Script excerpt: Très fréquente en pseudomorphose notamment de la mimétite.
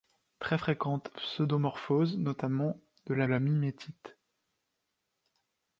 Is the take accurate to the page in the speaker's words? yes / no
no